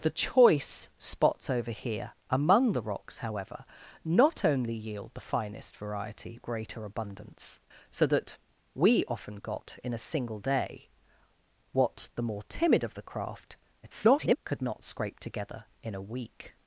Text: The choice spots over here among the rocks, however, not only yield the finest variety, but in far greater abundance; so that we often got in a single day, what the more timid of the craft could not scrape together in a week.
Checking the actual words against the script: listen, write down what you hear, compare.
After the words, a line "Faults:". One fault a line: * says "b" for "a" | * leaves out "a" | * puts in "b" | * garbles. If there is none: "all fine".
The choice spots over here among the rocks, however, not only yield the finest variety, greater abundance; so that we often got in a single day, what the more timid of the craft [garbled] could not scrape together in a week.
Faults:
* leaves out "but in far"
* garbles